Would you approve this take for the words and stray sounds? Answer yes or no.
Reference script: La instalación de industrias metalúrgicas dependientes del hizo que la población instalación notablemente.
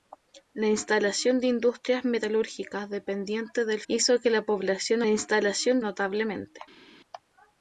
yes